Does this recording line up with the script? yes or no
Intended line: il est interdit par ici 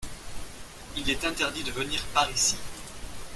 no